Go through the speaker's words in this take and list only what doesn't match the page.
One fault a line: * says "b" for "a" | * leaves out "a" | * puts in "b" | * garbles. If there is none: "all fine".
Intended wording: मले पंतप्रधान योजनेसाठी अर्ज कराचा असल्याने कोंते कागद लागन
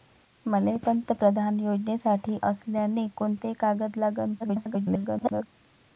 * leaves out "अर्ज कराचा"
* garbles